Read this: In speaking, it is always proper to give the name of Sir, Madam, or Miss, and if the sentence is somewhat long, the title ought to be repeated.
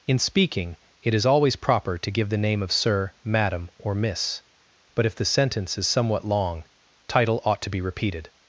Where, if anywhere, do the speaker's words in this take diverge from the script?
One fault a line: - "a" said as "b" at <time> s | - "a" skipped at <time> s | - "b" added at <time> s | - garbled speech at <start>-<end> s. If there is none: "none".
- "and" said as "but" at 5.0 s
- "the" skipped at 6.6 s